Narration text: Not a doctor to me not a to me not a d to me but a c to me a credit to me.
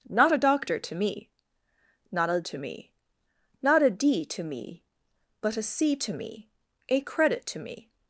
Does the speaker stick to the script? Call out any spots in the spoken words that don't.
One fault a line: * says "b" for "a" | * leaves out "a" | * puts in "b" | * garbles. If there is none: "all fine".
all fine